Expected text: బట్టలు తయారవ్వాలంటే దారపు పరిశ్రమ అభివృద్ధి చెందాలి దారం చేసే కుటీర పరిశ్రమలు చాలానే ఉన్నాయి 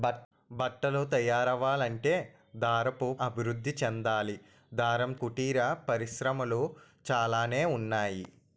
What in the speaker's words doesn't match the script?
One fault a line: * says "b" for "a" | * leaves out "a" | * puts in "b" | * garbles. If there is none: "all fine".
* leaves out "పరిశ్రమ"
* leaves out "చేసే"